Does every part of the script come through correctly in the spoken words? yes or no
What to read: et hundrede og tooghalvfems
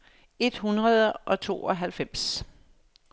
yes